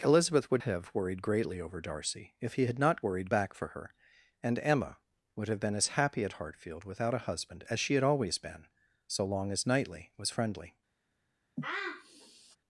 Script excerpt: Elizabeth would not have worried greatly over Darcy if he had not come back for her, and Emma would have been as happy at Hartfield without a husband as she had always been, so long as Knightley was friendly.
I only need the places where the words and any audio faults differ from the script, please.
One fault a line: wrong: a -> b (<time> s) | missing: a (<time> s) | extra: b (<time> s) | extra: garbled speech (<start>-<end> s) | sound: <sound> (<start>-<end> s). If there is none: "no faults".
missing: not (0.6 s)
wrong: come -> worried (3.0 s)
sound: sniff (11.6-12.6 s)